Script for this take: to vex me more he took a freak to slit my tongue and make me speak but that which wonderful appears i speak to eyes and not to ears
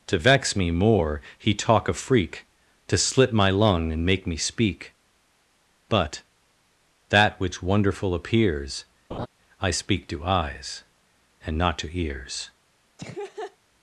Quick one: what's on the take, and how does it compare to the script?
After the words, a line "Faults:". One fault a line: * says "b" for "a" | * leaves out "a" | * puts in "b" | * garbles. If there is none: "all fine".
to vex me more he talk a freak to slit my lung and make me speak but that which wonderful appears i speak to eyes and not to ears
Faults:
* says "talk" for "took"
* says "lung" for "tongue"